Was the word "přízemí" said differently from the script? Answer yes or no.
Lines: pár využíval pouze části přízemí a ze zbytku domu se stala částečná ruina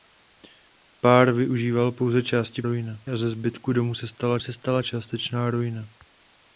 yes